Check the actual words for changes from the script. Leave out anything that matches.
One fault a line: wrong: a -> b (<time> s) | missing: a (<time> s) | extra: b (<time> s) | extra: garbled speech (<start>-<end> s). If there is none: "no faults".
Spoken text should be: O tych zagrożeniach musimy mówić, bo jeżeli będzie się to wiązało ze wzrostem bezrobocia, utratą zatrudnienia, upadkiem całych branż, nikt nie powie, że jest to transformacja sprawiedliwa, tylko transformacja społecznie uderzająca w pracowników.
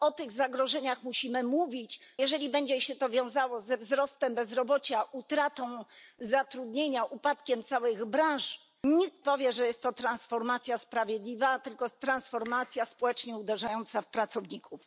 missing: bo (2.0 s)
missing: nie (9.3 s)